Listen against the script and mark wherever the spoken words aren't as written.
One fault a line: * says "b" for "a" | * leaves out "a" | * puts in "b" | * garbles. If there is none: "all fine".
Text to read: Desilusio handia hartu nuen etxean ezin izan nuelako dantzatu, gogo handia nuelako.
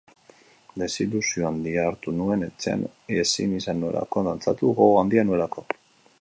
all fine